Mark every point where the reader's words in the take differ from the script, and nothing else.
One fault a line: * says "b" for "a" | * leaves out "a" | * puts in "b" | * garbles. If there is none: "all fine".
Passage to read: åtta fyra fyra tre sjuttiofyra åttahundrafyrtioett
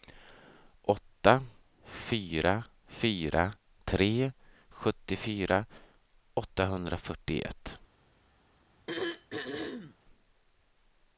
all fine